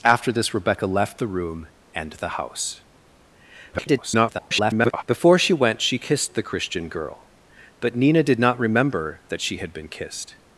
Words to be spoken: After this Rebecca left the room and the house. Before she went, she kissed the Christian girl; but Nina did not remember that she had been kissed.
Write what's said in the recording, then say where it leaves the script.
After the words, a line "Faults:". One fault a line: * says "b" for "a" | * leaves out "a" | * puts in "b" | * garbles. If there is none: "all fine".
After this Rebecca left the room and the house. [garbled] Before she went, she kissed the Christian girl; but Nina did not remember that she had been kissed.
Faults:
* garbles